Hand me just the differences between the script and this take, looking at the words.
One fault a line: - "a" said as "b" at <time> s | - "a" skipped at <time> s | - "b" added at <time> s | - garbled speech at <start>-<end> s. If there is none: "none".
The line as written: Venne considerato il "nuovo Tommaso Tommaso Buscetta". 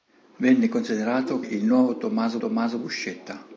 none